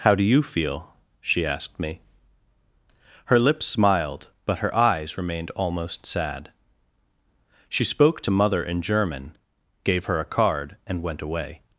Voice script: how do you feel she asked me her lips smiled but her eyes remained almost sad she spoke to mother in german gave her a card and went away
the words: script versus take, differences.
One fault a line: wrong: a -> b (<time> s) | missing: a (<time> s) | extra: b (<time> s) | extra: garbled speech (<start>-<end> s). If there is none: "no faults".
no faults